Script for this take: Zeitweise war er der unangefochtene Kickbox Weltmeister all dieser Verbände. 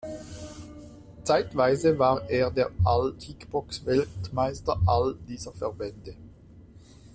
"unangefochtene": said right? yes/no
no